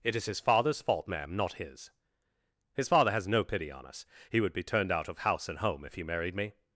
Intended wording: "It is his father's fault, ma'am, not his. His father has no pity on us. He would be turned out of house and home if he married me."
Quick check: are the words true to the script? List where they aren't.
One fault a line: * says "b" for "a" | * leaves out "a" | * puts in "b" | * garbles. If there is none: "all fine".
all fine